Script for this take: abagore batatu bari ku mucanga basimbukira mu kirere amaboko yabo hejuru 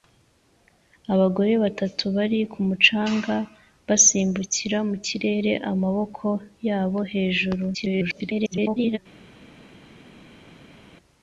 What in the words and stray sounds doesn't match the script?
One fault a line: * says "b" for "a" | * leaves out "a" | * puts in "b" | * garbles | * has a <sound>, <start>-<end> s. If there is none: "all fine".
* garbles